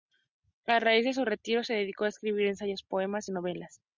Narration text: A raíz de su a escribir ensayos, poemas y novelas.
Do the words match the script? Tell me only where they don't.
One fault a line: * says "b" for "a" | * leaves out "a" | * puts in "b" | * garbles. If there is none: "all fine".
* puts in "retiro se dedicó"